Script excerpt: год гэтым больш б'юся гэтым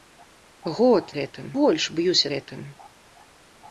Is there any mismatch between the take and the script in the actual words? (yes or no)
no